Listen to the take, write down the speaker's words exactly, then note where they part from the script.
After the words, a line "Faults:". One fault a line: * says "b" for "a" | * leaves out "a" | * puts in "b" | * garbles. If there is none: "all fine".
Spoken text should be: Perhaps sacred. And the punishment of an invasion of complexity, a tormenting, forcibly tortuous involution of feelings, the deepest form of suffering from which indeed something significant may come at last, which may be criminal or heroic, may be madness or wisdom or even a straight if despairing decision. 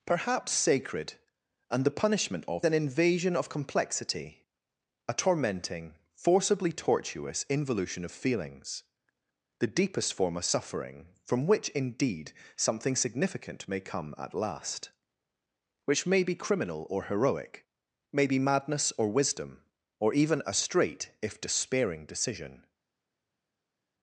Perhaps sacred. And the punishment of an invasion of complexity, a tormenting, forcibly tortuous involution of feelings, the deepest form of suffering from which indeed something significant may come at last, which may be criminal or heroic, may be madness or wisdom or even a straight if despairing decision.
Faults:
all fine